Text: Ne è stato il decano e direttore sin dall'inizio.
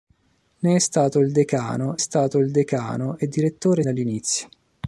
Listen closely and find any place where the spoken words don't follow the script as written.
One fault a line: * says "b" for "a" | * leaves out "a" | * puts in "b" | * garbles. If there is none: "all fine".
* puts in "stato il decano"
* leaves out "sin"